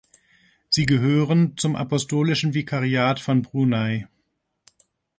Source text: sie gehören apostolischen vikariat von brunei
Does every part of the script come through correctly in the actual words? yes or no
no